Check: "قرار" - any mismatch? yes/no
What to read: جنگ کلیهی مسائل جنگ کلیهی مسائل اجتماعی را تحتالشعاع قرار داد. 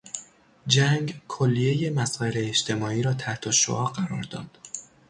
no